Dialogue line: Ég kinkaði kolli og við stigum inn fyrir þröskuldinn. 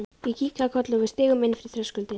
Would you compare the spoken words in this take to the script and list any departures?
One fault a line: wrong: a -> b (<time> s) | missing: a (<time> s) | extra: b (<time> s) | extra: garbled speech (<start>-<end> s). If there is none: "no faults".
no faults